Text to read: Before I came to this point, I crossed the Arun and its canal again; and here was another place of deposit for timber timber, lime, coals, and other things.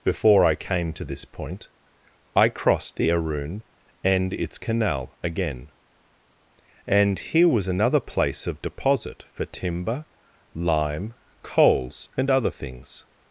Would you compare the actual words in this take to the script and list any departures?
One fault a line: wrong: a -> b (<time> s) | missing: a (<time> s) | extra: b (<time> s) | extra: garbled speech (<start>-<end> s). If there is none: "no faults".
missing: timber (10.1 s)